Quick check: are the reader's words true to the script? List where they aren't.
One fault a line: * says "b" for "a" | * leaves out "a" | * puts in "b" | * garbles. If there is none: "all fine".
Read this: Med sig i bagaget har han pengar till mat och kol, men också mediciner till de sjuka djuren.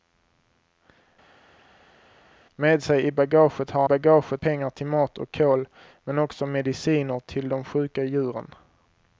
* says "bagaget" for "han"